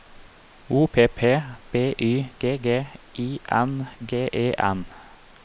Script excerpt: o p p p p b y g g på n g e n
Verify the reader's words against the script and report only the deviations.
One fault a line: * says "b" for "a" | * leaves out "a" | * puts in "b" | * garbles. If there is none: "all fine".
* leaves out "p p"
* says "i" for "på"